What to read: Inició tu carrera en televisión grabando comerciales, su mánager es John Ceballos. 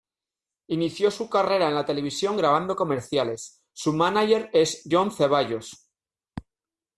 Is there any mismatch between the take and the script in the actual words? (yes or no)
yes